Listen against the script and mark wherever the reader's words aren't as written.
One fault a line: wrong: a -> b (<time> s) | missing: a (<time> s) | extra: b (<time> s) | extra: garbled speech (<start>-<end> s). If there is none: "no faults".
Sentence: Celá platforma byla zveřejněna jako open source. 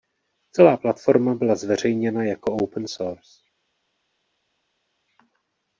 no faults